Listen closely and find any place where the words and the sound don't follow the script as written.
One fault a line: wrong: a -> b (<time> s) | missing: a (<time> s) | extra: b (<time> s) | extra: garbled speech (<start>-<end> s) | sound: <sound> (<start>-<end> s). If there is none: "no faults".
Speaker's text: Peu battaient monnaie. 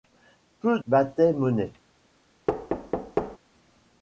sound: thud (2.5-3.4 s)